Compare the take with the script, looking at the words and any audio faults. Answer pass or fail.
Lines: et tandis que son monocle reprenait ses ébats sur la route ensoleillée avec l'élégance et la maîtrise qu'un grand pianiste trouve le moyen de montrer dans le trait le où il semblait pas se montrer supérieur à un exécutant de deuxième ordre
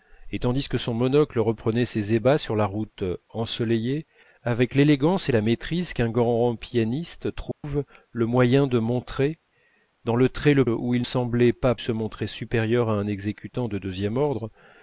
fail